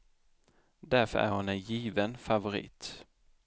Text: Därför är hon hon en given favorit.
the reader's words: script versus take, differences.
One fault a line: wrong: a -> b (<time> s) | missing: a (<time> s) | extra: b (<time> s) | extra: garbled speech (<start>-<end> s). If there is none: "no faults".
missing: hon (1.5 s)